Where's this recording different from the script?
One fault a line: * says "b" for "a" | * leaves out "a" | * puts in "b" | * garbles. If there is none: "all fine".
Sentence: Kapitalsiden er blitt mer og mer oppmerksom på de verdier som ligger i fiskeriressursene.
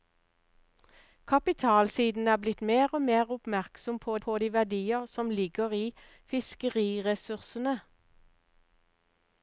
* puts in "på"